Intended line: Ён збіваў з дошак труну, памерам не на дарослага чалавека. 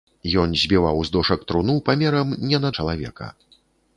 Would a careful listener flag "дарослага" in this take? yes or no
yes